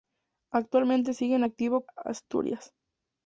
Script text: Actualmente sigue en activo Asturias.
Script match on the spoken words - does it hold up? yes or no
yes